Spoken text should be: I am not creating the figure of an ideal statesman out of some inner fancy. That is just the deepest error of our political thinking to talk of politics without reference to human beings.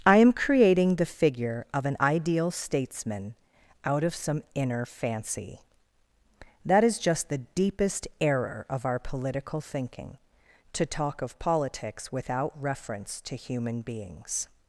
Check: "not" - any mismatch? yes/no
yes